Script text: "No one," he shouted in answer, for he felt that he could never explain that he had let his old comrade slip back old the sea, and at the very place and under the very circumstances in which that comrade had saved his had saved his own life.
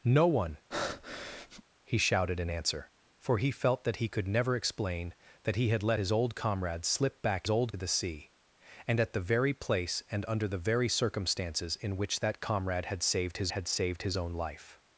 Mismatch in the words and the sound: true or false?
true